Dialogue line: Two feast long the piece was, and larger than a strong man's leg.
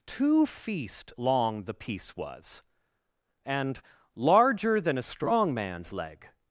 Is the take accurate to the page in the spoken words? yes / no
yes